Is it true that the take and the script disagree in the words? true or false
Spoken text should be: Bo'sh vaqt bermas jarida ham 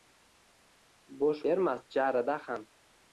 true